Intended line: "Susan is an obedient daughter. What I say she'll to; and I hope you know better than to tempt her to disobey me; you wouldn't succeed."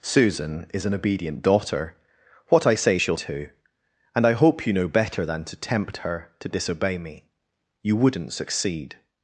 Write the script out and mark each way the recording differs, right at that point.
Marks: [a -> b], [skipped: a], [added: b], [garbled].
"Susan is an obedient daughter. What I say she'll to; and I hope you know better than to tempt her to disobey me; you wouldn't succeed."